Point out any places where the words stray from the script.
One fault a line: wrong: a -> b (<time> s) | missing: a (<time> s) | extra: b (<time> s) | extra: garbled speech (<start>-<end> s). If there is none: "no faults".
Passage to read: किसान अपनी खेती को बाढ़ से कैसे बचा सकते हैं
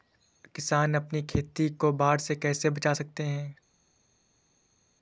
no faults